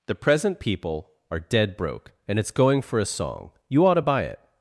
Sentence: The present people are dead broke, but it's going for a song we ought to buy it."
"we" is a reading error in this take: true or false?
true